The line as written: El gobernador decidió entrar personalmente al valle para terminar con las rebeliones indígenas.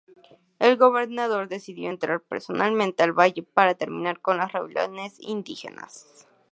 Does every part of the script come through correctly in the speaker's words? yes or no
yes